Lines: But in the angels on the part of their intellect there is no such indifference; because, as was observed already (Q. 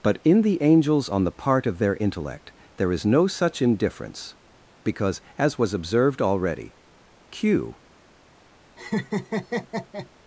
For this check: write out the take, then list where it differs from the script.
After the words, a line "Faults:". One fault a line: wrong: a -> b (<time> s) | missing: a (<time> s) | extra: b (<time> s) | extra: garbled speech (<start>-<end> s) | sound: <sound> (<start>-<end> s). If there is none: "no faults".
But in the angels on the part of their intellect there is no such indifference; because, as was observed already (Q.
Faults:
sound: laugh (8.8-10.1 s)